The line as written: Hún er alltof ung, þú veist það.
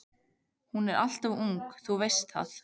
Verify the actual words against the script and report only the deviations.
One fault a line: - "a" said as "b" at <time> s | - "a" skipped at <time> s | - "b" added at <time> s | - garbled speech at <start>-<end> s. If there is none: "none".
none